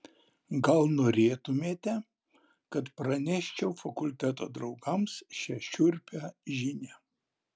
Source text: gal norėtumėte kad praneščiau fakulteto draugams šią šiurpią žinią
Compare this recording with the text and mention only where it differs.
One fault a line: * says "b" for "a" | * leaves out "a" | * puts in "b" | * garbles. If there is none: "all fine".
all fine